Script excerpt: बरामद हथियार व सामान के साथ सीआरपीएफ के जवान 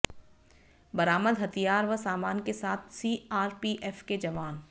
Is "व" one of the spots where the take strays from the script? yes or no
no